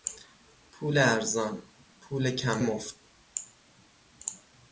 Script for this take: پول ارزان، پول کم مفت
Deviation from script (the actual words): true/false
false